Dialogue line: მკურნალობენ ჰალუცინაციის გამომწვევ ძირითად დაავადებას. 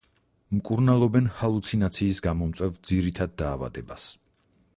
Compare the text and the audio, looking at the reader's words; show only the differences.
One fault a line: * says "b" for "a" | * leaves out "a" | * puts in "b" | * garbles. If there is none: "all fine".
all fine